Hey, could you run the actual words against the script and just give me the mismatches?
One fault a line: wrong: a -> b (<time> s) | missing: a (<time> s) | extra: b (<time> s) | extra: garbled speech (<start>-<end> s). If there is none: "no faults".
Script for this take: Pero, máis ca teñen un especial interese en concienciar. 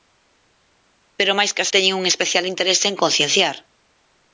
no faults